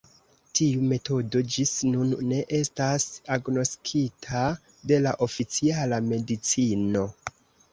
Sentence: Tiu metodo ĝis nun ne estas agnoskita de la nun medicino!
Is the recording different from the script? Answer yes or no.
yes